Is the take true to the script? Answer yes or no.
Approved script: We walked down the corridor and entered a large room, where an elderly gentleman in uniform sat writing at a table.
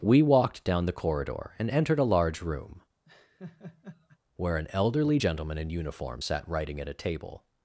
yes